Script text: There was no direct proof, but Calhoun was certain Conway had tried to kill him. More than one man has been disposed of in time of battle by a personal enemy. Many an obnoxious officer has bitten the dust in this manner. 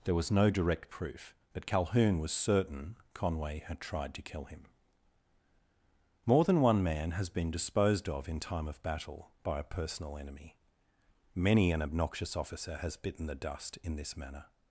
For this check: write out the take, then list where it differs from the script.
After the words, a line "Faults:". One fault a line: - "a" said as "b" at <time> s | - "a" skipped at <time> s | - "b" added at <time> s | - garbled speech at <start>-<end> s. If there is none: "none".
There was no direct proof, but Calhoun was certain Conway had tried to kill him. More than one man has been disposed of in time of battle by a personal enemy. Many an obnoxious officer has bitten the dust in this manner.
Faults:
none